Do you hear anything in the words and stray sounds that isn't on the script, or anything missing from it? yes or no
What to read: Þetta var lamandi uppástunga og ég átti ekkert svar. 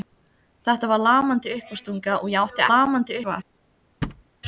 yes